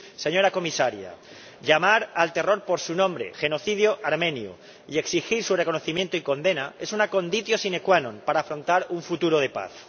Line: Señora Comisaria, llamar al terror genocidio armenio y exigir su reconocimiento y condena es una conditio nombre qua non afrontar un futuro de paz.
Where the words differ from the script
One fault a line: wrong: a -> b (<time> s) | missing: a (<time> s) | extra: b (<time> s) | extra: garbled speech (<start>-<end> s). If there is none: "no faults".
extra: por su nombre (2.6 s)
wrong: nombre -> sine (7.6 s)
extra: para (8.2 s)